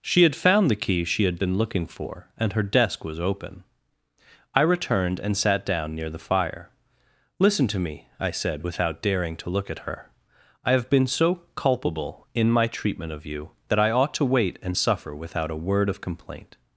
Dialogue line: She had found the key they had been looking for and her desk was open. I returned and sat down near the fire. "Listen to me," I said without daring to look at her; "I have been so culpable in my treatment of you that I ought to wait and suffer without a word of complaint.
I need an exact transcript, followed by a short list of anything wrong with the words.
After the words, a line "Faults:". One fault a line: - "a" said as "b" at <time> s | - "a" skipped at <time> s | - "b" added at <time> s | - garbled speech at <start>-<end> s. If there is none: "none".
She had found the key she had been looking for and her desk was open. I returned and sat down near the fire. "Listen to me," I said without daring to look at her; "I have been so culpable in my treatment of you that I ought to wait and suffer without a word of complaint.
Faults:
- "they" said as "she" at 1.1 s